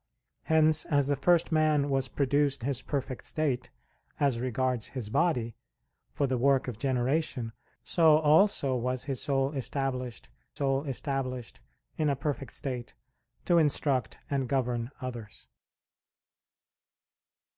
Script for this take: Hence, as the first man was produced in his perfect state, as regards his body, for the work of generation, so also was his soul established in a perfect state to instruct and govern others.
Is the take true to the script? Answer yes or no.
no